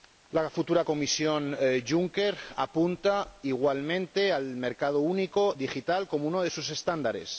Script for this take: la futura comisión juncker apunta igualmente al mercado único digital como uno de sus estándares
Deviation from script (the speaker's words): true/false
false